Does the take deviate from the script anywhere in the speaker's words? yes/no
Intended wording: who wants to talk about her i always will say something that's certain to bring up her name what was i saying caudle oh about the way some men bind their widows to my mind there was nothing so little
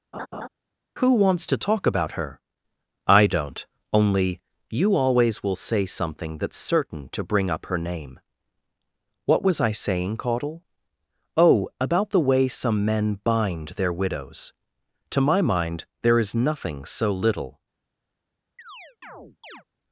yes